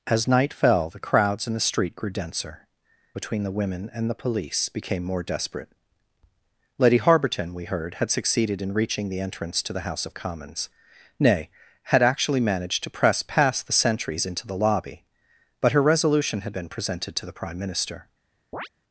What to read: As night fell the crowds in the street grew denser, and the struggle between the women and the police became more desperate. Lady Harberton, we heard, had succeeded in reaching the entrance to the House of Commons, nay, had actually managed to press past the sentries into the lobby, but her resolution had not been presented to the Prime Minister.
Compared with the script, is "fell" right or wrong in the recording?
right